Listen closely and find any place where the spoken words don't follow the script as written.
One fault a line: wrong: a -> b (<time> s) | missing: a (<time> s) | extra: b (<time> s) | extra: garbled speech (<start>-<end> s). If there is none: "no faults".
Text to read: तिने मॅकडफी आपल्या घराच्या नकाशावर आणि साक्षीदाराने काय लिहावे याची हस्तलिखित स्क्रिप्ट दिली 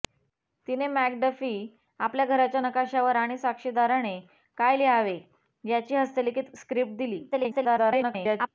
extra: garbled speech (7.3-8.5 s)